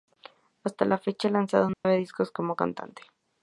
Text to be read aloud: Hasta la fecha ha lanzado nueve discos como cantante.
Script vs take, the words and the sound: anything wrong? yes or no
yes